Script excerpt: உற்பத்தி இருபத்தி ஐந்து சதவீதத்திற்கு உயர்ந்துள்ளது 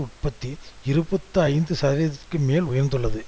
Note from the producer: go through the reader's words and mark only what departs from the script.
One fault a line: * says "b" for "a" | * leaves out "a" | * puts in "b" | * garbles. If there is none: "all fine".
* puts in "மேல்"